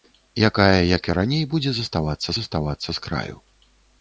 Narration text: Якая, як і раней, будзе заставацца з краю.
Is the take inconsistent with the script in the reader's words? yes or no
yes